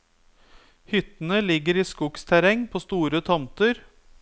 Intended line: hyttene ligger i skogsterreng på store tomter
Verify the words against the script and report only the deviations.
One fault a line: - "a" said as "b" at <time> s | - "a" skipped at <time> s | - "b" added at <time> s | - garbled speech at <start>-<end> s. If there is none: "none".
none